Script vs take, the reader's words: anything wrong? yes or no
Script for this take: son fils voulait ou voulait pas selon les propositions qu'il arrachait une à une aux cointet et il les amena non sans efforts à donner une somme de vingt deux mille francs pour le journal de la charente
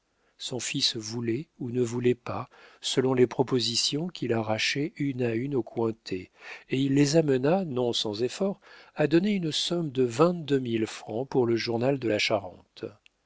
yes